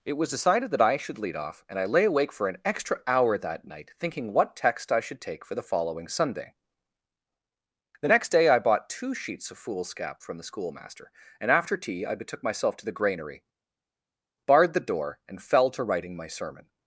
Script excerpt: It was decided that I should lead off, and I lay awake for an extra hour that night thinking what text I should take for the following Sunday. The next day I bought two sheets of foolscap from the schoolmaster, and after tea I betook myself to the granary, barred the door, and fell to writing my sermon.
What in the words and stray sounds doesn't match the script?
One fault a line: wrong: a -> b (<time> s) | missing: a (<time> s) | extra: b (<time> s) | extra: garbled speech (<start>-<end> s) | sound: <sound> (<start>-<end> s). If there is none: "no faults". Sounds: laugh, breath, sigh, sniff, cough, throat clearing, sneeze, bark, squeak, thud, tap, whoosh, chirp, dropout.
no faults